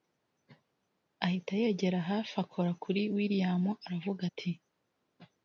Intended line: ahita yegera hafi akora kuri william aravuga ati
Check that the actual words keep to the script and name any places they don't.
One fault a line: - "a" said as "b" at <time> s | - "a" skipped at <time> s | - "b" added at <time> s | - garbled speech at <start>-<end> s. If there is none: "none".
none